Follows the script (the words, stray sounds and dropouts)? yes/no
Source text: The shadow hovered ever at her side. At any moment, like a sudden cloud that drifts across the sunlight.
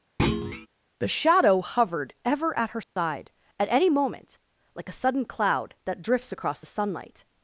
no